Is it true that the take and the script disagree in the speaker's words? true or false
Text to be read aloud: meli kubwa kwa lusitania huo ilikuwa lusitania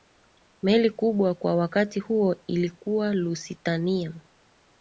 true